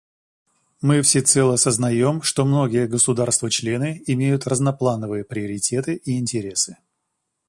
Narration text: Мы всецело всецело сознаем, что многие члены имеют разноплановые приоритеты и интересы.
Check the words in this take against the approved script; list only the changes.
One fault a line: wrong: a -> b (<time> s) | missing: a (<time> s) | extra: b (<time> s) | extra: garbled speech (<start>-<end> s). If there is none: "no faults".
missing: всецело (1.6 s)
extra: государства (2.9 s)